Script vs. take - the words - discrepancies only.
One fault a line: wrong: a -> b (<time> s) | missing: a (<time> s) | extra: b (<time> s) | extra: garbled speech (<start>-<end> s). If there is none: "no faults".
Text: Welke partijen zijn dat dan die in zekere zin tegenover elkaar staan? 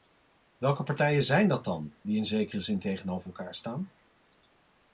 no faults